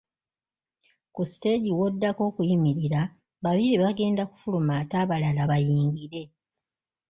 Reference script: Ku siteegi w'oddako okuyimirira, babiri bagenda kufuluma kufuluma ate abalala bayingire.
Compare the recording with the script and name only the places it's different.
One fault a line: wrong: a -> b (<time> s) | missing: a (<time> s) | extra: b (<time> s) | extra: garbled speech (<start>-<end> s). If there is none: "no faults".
missing: kufuluma (4.7 s)